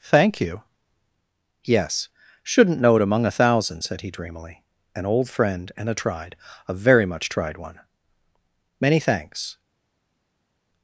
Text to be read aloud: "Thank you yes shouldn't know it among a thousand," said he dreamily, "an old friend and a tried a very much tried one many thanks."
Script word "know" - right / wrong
right